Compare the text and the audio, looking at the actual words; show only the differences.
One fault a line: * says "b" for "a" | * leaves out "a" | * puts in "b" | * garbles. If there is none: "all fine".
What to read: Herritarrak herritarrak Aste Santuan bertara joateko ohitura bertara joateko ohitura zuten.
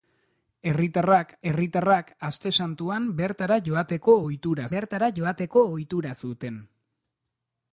all fine